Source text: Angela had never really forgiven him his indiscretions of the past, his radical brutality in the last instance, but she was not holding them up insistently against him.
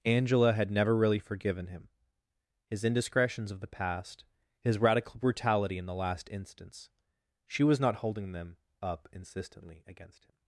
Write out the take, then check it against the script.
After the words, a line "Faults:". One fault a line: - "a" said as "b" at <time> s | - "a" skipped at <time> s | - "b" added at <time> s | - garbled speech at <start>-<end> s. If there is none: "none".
Angela had never really forgiven him his indiscretions of the past, his radical brutality in the last instance, she was not holding them up insistently against him.
Faults:
- "but" skipped at 6.9 s